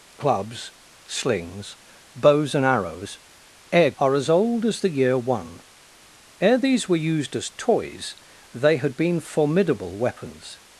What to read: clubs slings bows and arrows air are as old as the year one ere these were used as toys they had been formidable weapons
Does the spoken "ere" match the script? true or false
true